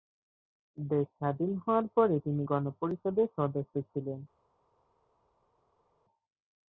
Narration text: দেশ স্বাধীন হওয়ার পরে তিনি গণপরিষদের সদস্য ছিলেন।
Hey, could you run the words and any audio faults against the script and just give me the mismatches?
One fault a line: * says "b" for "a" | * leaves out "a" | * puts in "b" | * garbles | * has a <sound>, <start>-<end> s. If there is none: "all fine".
all fine